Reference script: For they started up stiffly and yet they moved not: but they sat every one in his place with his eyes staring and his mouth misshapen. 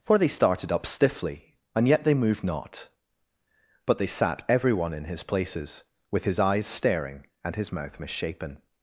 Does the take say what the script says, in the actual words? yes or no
no